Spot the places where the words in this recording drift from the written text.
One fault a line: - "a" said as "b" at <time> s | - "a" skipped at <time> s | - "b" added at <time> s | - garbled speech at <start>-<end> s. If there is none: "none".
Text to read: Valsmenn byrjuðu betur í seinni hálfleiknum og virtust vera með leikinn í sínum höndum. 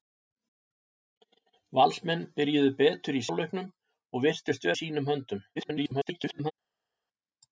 - "seinni" skipped at 3.2 s
- "vera með leikinn" skipped at 4.7 s
- garbled speech at 5.6-6.5 s